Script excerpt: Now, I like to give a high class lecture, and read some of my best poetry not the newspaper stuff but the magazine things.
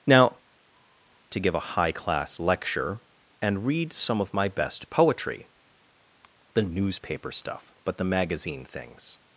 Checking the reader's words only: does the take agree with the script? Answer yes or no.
no